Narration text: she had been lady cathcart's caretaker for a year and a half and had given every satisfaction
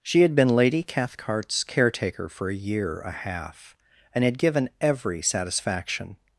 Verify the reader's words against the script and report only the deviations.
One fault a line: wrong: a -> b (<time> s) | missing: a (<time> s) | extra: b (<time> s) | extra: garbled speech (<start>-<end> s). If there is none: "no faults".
missing: and (3.0 s)